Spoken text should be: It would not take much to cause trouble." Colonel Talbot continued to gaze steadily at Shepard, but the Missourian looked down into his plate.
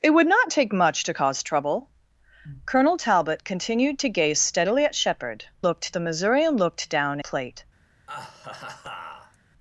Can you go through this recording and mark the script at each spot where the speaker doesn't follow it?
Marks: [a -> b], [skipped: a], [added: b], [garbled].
It would not take much to cause trouble." Colonel Talbot continued to gaze steadily at Shepard, [but -> looked] the Missourian looked down [skipped: into his] plate.